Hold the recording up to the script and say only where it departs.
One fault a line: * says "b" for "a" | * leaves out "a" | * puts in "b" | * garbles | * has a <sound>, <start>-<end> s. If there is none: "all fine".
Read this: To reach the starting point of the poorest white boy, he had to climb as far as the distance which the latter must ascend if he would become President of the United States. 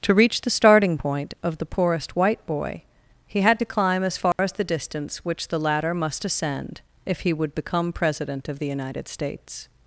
* has a dropout, 4.3-4.4 s